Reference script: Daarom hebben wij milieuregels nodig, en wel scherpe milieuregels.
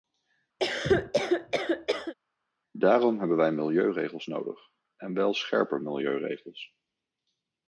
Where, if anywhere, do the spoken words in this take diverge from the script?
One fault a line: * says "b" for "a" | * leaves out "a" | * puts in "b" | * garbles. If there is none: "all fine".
all fine